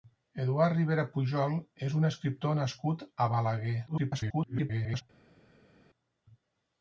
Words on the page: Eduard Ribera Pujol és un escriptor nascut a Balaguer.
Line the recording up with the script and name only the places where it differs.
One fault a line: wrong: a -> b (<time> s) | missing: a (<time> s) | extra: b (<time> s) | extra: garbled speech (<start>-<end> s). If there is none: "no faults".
extra: garbled speech (3.9-5.0 s)